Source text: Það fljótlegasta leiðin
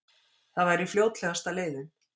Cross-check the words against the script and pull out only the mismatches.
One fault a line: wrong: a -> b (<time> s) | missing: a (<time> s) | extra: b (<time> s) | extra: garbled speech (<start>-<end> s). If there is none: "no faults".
extra: væri (0.7 s)